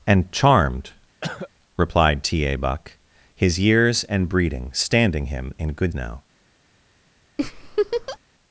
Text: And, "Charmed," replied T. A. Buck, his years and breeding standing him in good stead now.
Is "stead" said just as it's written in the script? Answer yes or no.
no